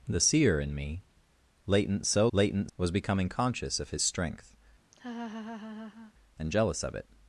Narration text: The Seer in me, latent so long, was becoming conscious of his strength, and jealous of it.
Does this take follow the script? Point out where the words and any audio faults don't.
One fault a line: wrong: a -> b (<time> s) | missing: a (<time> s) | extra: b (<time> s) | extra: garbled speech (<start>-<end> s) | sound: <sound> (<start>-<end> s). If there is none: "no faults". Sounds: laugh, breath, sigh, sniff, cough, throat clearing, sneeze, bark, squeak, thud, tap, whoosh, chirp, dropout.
wrong: long -> latent (2.3 s)
sound: laugh (4.9-6.1 s)